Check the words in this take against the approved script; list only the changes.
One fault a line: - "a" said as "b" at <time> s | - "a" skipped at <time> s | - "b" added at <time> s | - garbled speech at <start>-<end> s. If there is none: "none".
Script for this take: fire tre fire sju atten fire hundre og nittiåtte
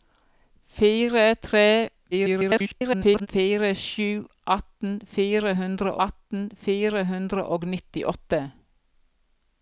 - garbled speech at 2.1-3.3 s
- "atten fire hundre" added at 6.1 s